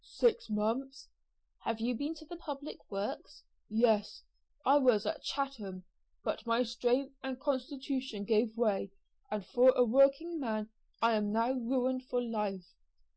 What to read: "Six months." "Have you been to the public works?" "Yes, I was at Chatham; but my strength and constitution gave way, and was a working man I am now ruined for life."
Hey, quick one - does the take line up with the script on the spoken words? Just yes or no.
no